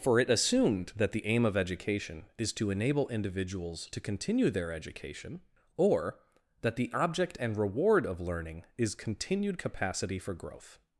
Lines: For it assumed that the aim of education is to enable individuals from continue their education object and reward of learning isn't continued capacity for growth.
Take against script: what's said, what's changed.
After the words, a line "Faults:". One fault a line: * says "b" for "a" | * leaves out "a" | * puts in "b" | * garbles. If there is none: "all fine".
For it assumed that the aim of education is to enable individuals to continue their education or that the object and reward of learning is continued capacity for growth.
Faults:
* says "to" for "from"
* puts in "or that the"
* says "is" for "isn't"